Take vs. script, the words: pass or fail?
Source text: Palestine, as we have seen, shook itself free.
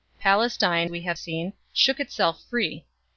fail